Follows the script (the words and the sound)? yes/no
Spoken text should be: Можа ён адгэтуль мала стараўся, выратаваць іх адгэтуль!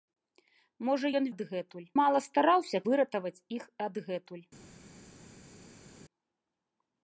yes